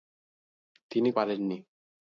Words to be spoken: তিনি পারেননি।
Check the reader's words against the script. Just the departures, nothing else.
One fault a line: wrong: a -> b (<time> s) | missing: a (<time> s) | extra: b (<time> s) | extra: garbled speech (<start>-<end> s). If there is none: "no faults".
no faults